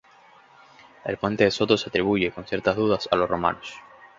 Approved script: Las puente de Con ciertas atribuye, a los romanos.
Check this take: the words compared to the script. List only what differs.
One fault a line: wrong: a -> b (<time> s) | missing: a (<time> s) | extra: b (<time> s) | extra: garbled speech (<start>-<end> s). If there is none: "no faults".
wrong: Las -> El (1.1 s)
extra: Soto se atribuye (1.5 s)
wrong: atribuye -> dudas (2.8 s)